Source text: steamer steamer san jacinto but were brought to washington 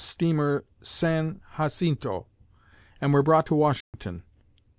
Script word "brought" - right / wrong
right